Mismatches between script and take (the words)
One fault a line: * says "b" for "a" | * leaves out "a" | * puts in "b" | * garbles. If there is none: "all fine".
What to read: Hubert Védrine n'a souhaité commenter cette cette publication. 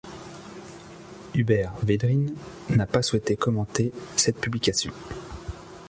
* puts in "pas"
* leaves out "cette"